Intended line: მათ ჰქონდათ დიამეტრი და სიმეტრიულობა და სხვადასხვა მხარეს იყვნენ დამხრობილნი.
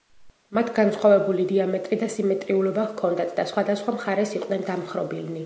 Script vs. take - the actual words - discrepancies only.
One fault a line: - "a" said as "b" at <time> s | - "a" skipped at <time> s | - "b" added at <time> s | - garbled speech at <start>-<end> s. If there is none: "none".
- "ჰქონდათ" said as "განსხვავებული" at 0.8 s
- "ჰქონდათ" added at 2.9 s